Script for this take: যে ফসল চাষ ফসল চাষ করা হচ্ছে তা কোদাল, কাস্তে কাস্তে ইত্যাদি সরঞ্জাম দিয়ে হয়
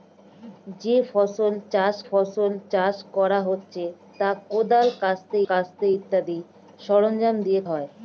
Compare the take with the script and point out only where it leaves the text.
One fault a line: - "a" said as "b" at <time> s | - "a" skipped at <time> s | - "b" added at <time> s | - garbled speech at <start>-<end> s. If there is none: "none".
none